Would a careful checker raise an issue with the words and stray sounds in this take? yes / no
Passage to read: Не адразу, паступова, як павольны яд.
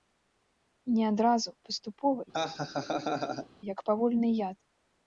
yes